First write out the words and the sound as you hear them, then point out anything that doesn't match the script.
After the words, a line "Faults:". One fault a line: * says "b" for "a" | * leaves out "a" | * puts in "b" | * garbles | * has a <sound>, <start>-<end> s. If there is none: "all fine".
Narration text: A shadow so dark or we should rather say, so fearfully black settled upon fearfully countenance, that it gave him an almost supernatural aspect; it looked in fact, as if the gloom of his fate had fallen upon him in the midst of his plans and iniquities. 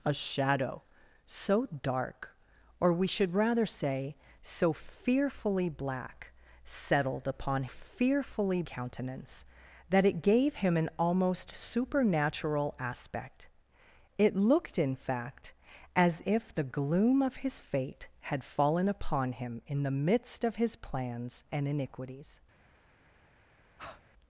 A shadow so dark or we should rather say, so fearfully black settled upon fearfully countenance, that it gave him an almost supernatural aspect; it looked in fact, as if the gloom of his fate had fallen upon him in the midst of his plans and iniquities.
Faults:
* has a breath, 23.8-24.0 s